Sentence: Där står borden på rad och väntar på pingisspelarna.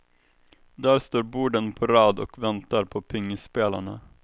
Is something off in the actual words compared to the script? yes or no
no